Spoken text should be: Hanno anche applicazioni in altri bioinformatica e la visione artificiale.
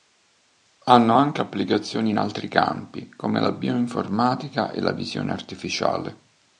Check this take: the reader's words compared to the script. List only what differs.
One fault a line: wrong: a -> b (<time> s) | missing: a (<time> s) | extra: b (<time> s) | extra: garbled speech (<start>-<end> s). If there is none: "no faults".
extra: campi come la (2.5 s)